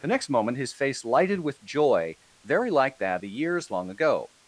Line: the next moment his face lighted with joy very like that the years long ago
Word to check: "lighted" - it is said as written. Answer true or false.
true